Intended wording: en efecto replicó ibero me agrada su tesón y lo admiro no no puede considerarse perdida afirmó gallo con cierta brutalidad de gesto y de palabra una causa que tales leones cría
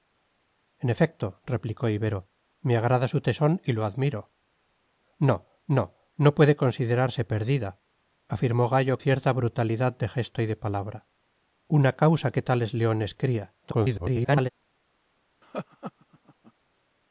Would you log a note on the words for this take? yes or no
yes